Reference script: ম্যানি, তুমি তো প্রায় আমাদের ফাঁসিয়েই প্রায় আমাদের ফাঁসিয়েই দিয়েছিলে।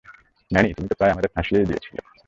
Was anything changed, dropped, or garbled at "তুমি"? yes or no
no